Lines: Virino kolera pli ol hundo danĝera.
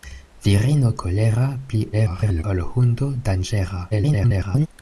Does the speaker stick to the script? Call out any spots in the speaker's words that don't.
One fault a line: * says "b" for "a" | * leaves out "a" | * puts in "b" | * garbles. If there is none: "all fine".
* garbles
* garbles